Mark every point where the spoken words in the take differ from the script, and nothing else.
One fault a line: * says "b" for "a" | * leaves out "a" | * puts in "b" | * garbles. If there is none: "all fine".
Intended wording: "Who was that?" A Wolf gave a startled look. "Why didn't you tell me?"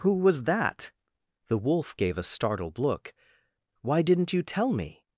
* says "The" for "A"